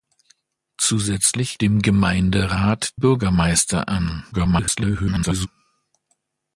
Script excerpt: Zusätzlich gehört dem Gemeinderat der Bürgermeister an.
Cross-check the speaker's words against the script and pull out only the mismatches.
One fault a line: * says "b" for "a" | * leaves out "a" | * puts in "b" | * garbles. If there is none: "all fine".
* leaves out "gehört"
* leaves out "der"
* garbles